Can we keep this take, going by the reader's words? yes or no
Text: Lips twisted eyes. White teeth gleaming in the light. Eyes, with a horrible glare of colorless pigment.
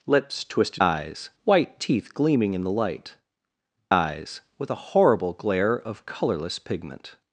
yes